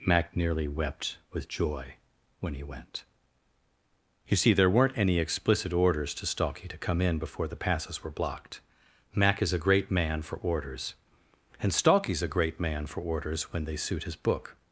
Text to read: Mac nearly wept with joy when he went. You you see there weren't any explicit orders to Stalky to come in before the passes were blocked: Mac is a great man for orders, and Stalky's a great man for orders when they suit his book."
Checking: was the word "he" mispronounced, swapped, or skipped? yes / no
no